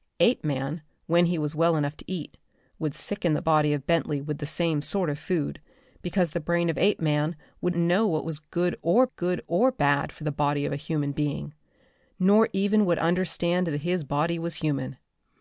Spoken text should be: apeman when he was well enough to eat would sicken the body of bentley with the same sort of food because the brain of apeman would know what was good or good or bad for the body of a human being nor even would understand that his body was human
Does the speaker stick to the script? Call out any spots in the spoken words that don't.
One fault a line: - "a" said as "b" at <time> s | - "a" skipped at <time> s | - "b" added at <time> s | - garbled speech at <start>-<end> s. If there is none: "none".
none